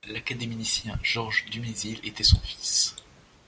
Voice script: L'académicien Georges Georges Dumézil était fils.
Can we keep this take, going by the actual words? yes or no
no